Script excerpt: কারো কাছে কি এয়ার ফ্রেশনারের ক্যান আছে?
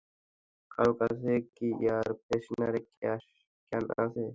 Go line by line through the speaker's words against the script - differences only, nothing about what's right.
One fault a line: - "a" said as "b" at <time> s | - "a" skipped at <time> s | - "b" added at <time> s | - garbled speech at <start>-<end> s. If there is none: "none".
none